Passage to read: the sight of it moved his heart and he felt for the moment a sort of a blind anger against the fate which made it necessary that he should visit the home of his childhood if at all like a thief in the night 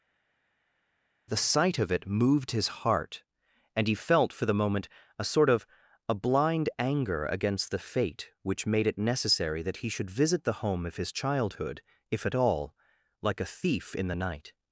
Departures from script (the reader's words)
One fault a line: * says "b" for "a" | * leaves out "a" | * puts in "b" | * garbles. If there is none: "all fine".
all fine